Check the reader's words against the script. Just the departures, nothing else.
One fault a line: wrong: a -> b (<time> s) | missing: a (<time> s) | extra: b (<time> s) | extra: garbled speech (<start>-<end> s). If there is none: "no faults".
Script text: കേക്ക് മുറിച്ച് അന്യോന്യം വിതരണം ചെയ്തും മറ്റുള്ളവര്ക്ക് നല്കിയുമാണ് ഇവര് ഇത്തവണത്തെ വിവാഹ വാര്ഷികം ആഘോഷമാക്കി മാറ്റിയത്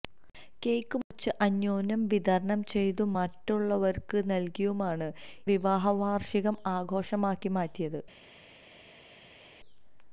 missing: ഇവര് ഇത്തവണത്തെ (5.1 s)